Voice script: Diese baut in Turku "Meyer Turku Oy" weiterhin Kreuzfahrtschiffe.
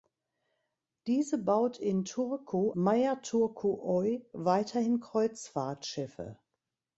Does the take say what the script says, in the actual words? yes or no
yes